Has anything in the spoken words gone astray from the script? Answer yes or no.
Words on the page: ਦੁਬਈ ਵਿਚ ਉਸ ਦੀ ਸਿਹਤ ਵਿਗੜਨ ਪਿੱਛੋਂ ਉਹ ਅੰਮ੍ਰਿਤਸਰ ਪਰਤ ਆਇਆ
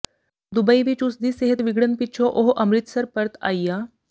no